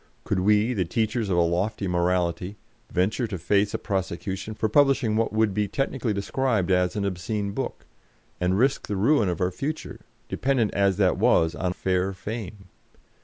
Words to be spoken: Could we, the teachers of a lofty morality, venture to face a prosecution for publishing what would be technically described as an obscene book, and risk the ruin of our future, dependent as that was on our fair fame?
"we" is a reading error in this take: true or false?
false